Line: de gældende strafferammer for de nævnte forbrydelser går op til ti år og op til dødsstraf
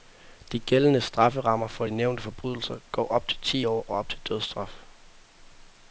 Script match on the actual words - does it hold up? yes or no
yes